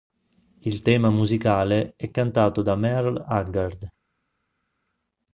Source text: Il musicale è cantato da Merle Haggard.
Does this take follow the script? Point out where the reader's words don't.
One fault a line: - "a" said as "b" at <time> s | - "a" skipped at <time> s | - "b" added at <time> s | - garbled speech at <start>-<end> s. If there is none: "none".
- "tema" added at 0.8 s